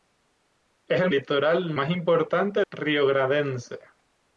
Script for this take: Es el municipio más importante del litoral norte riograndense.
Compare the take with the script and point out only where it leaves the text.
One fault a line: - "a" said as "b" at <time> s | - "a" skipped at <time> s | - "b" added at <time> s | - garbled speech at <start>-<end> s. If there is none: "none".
- "municipio" said as "litoral" at 1.1 s
- "del litoral norte" skipped at 2.6 s